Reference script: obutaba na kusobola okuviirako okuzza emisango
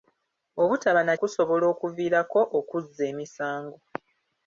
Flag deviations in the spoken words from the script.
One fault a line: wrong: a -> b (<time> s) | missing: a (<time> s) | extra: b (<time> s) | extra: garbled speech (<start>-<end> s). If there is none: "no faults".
no faults